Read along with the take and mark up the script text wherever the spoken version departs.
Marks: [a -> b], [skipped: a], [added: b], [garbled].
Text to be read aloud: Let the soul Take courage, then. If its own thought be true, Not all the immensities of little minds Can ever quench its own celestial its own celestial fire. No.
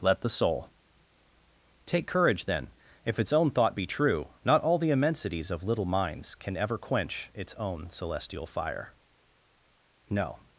Let the soul Take courage, then. If its own thought be true, Not all the immensities of little minds Can ever quench its own celestial [skipped: its own celestial] fire. No.